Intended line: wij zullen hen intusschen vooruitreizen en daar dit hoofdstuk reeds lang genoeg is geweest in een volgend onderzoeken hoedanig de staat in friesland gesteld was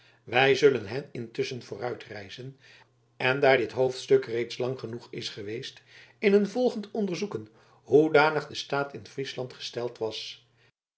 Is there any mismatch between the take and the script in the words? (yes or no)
no